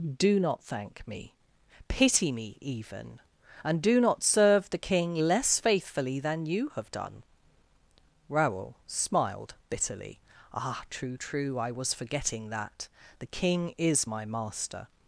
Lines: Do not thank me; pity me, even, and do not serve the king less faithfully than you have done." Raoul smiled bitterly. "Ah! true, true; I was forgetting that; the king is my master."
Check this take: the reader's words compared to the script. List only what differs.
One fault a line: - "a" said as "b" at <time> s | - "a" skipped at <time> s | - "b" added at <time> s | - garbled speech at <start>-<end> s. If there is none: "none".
none